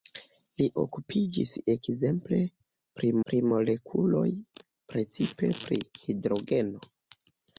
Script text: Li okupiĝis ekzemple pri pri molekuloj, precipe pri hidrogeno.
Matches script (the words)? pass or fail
pass